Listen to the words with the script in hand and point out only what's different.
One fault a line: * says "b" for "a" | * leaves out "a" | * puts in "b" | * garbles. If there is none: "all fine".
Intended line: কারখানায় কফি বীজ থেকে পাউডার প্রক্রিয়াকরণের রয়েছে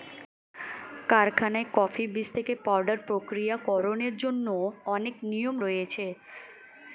* puts in "জন্য অনেক নিয়ম"